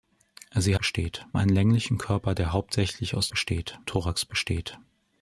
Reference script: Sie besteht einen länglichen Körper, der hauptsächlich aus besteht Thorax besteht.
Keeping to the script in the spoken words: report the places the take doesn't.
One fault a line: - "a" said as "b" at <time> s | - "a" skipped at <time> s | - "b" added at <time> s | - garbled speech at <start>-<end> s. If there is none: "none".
none